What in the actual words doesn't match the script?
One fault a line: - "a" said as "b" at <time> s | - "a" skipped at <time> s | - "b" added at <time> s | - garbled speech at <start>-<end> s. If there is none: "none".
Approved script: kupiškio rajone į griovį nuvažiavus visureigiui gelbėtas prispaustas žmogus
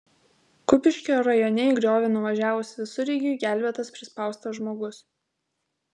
none